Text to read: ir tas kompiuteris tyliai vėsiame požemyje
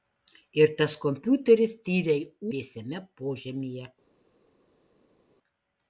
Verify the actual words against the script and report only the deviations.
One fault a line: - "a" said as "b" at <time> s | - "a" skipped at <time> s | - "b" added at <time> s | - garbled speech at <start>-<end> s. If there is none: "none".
none